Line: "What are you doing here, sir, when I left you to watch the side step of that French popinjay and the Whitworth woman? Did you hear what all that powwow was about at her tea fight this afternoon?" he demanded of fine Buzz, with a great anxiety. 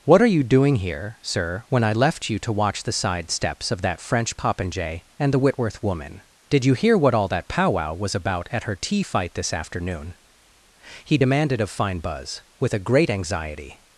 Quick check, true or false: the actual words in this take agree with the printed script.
false